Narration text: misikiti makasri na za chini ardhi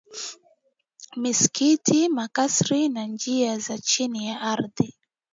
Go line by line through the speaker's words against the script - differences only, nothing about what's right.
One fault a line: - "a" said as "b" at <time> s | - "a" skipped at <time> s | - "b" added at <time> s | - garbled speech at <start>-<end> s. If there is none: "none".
- "njia" added at 3.0 s
- "ya" added at 4.3 s